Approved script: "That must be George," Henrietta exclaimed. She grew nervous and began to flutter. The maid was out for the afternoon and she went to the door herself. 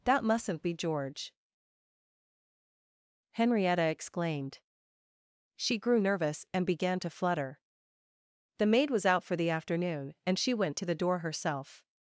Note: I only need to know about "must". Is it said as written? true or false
false